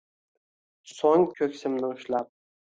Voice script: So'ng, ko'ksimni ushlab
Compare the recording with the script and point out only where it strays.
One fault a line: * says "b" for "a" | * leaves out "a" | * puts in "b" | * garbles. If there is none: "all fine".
all fine